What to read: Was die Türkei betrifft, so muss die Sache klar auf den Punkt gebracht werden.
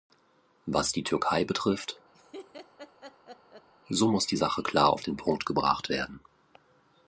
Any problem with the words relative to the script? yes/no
no